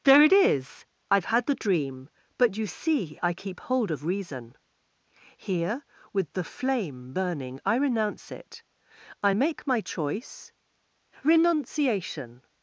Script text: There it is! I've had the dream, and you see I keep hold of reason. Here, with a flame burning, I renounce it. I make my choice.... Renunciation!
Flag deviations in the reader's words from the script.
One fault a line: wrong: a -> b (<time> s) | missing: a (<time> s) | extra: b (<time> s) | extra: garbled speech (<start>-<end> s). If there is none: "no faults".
wrong: and -> but (2.4 s)
wrong: a -> the (6.3 s)